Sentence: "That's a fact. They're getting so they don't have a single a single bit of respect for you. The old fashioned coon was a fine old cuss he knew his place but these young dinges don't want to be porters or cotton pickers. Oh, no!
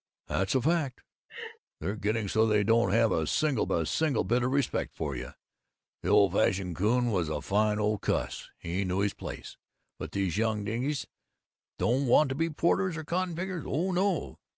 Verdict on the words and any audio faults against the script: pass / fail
fail